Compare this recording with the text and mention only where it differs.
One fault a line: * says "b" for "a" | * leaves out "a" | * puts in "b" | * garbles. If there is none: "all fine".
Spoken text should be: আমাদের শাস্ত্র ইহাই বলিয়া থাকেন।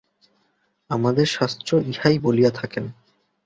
all fine